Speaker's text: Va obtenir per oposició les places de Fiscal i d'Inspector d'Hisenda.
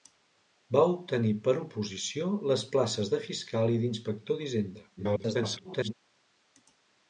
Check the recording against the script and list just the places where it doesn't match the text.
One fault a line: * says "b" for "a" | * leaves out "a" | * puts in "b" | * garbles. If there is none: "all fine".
* garbles